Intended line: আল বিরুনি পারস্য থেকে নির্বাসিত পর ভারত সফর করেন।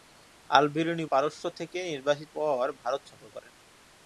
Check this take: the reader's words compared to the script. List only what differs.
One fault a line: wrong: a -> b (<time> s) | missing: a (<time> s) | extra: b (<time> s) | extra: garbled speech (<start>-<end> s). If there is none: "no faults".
no faults